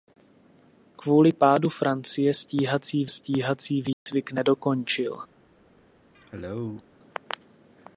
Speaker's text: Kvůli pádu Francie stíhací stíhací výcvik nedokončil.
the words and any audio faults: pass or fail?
fail